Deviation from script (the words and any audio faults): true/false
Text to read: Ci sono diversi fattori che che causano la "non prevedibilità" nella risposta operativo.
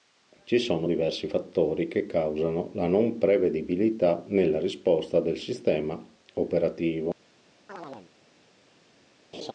true